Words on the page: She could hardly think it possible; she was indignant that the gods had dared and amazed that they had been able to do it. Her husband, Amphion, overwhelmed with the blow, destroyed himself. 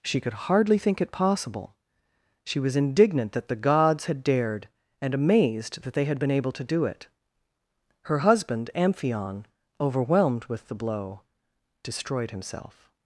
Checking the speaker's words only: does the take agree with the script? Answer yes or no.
yes